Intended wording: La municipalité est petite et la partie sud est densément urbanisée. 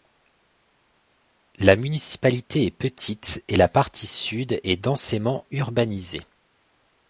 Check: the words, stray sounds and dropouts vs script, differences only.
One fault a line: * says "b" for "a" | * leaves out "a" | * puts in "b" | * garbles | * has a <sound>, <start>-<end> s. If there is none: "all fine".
all fine